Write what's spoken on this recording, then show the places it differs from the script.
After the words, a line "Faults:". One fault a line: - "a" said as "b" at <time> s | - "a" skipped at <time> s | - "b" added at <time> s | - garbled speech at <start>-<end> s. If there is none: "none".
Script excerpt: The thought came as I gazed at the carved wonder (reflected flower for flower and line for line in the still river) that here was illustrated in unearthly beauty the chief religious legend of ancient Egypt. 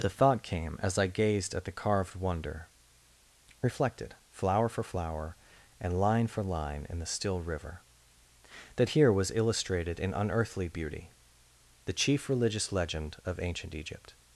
The thought came as I gazed at the carved wonder (reflected flower for flower and line for line in the still river) that here was illustrated in unearthly beauty the chief religious legend of ancient Egypt.
Faults:
none